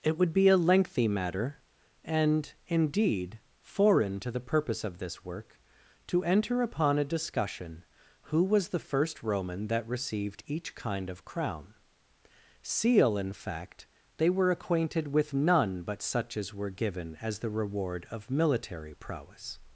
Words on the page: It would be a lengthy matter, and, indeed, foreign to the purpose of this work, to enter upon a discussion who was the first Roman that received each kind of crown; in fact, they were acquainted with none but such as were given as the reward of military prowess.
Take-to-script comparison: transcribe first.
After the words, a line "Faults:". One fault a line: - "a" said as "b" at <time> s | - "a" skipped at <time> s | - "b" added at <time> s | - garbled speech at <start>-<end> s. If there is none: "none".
It would be a lengthy matter, and, indeed, foreign to the purpose of this work, to enter upon a discussion who was the first Roman that received each kind of crown; seal in fact, they were acquainted with none but such as were given as the reward of military prowess.
Faults:
- "seal" added at 12.6 s